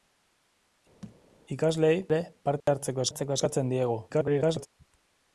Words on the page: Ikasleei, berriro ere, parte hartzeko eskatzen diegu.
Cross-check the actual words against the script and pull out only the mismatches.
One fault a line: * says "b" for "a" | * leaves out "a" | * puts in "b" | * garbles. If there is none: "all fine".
* leaves out "berriro"
* puts in "hartzeko"
* garbles